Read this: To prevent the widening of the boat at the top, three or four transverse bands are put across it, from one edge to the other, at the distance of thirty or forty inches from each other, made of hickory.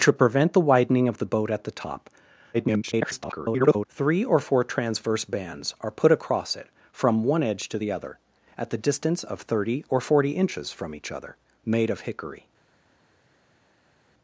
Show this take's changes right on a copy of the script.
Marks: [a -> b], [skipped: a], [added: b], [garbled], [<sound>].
To prevent the widening of the boat at the top, [garbled] three or four transverse bands are put across it, from one edge to the other, at the distance of thirty or forty inches from each other, made of hickory.